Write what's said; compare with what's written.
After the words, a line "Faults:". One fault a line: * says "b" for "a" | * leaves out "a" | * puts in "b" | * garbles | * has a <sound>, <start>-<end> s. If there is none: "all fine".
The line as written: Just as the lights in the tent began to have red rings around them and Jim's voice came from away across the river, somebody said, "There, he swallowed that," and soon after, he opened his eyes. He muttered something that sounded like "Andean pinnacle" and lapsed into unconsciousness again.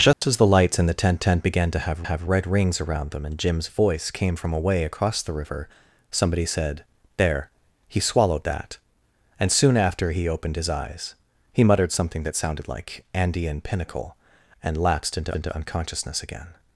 Just as the lights in the tent tent began to have have red rings around them and Jim's voice came from away across the river, somebody said, "There, he swallowed that," and soon after, he opened his eyes. He muttered something that sounded like "Andean pinnacle" and lapsed into into unconsciousness again.
Faults:
* has a dropout, 0.1-0.2 s
* puts in "tent"
* puts in "have"
* puts in "into"